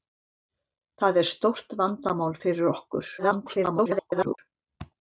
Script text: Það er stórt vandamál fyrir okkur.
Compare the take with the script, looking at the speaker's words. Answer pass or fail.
fail